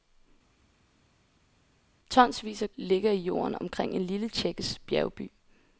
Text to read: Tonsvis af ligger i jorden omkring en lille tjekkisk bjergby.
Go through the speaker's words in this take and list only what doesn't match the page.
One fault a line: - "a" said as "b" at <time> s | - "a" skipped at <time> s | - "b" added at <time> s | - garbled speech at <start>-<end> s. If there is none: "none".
none